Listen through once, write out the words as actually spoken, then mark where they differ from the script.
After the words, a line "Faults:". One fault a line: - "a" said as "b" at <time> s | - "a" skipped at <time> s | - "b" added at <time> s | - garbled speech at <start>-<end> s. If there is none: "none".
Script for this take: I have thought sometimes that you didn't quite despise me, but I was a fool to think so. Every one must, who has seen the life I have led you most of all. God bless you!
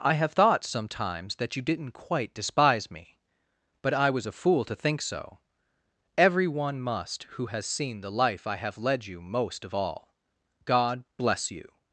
I have thought sometimes that you didn't quite despise me, but I was a fool to think so. Every one must, who has seen the life I have led you most of all. God bless you!
Faults:
none